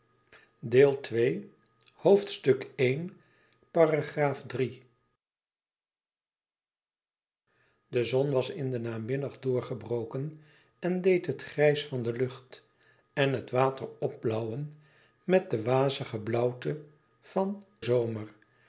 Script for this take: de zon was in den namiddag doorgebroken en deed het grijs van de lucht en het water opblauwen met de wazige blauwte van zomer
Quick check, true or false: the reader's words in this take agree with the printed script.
true